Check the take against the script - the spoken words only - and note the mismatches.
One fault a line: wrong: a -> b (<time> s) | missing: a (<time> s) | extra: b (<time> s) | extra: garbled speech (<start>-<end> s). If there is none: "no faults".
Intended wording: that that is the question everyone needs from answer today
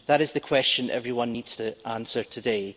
missing: that (0.2 s)
wrong: from -> to (1.5 s)